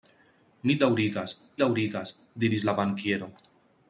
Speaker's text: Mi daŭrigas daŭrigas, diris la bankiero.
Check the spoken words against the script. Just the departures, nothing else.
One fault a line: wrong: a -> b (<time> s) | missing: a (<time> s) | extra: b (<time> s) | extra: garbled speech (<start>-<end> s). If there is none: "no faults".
no faults